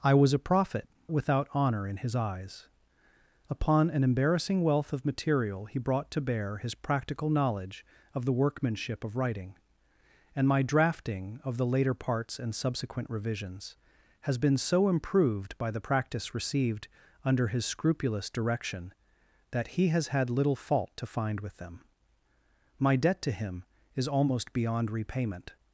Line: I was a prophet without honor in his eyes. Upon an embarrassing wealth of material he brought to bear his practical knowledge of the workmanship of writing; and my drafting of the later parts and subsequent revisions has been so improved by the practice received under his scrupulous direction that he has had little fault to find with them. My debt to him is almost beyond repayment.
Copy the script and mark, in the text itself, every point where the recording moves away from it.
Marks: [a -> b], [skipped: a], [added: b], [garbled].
I was a prophet without honor in his eyes. Upon an embarrassing wealth of material he brought to bear his practical knowledge of the workmanship of writing; and my drafting of the later parts and subsequent revisions has been so improved by the practice received under his scrupulous direction that he has had little fault to find with them. My debt to him is almost beyond repayment.